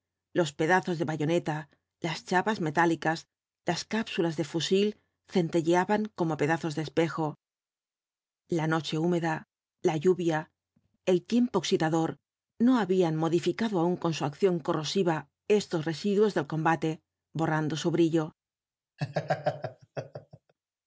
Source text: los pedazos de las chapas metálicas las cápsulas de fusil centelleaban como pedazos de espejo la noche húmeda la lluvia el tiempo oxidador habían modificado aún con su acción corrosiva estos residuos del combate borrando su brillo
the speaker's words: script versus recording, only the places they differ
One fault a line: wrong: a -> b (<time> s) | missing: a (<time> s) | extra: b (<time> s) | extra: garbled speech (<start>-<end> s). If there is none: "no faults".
extra: bayoneta (1.1 s)
extra: no (12.7 s)